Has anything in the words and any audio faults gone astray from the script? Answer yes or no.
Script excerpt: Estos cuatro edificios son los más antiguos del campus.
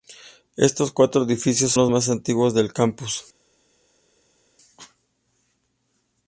yes